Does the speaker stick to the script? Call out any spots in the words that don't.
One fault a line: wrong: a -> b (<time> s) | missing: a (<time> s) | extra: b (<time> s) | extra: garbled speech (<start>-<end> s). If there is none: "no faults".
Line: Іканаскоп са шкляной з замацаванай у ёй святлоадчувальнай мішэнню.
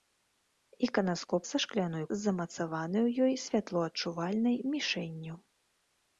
no faults